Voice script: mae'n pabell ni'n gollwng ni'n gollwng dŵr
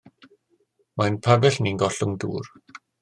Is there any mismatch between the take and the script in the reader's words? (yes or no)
yes